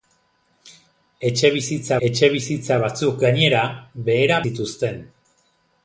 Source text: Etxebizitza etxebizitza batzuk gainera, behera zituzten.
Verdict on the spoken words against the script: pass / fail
pass